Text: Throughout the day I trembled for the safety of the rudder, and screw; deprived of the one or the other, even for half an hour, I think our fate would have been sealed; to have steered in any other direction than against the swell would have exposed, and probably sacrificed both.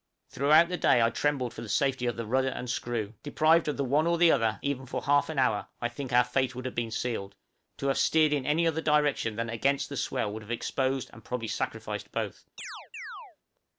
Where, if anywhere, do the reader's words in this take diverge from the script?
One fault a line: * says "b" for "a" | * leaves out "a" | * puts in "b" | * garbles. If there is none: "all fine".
all fine